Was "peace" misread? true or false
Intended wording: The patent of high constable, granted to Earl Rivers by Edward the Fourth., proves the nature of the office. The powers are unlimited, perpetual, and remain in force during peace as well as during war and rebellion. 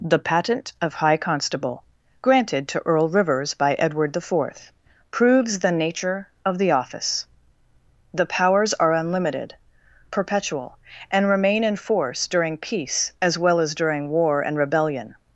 false